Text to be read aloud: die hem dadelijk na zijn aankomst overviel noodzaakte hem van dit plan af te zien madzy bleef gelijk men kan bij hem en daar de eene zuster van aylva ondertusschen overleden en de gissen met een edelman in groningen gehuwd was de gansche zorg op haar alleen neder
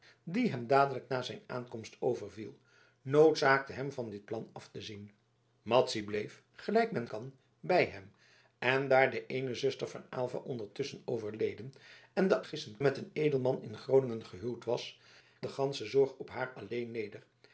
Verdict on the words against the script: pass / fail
pass